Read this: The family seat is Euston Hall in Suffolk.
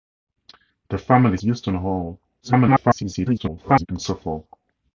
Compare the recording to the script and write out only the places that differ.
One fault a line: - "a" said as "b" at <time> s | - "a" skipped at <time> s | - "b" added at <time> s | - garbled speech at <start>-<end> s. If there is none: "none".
- "seat is" skipped at 1.4 s
- garbled speech at 2.4-3.9 s